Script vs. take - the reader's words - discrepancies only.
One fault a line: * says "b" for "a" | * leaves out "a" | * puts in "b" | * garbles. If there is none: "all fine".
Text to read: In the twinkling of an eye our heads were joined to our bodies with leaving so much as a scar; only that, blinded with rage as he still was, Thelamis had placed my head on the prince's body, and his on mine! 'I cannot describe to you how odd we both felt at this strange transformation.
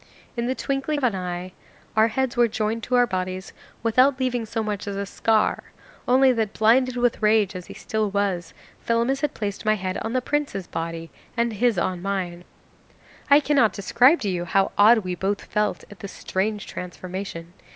* says "without" for "with"